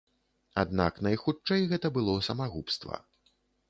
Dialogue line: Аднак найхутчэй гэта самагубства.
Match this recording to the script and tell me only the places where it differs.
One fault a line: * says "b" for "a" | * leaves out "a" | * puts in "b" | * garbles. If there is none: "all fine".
* puts in "было"